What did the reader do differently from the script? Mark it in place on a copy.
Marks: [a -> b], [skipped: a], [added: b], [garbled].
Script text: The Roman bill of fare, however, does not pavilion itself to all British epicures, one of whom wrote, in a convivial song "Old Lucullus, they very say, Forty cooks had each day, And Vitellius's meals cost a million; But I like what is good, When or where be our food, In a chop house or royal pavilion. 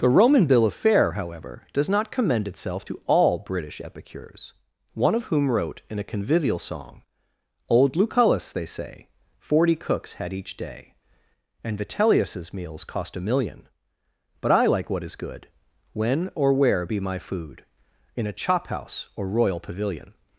The Roman bill of fare, however, does not [pavilion -> commend] itself to all British epicures, one of whom wrote, in a convivial song "Old Lucullus, they [skipped: very] say, Forty cooks had each day, And Vitellius's meals cost a million; But I like what is good, When or where be [our -> my] food, In a chop house or royal pavilion.